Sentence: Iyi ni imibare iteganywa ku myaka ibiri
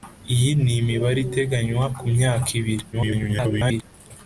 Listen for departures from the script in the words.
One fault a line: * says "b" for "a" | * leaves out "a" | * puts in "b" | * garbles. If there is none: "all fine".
* garbles